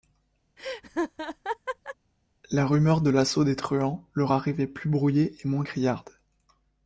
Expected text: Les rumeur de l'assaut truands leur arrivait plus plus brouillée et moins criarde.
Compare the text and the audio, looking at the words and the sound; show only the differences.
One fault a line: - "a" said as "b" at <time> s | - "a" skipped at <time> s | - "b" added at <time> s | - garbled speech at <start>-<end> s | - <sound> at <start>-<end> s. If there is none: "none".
- laugh at 0.6-2.0 s
- "Les" said as "La" at 2.5 s
- "des" added at 3.4 s
- "plus" skipped at 4.9 s